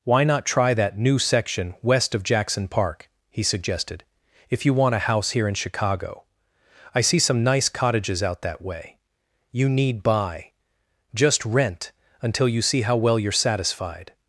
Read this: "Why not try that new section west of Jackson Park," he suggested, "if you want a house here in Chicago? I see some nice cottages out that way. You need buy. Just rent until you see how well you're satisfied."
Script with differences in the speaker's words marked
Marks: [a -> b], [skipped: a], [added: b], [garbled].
"Why not try that new section west of Jackson Park," he suggested, "if you want a house here in Chicago? I see some nice cottages out that way. You need buy. Just rent until you see how well you're satisfied."